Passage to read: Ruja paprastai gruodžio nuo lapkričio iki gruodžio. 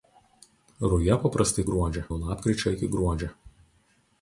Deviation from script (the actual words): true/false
false